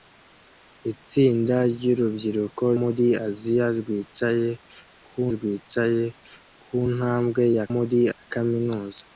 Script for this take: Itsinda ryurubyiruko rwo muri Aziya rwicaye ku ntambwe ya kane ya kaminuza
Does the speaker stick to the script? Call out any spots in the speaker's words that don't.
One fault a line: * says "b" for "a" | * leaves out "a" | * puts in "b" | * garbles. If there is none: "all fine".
* leaves out "rwo"
* puts in "rwicaye ku"
* says "muri" for "kane"